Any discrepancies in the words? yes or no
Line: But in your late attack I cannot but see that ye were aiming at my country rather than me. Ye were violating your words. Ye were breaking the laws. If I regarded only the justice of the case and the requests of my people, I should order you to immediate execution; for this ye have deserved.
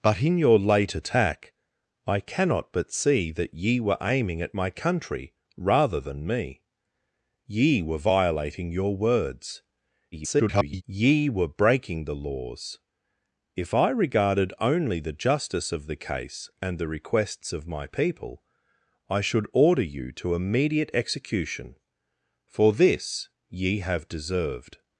yes